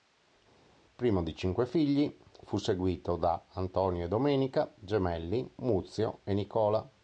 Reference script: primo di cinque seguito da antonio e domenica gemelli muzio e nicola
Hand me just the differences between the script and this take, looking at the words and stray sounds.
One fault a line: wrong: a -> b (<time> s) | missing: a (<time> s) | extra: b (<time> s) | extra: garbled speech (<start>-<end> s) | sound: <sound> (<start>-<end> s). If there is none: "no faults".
extra: figli fu (1.7 s)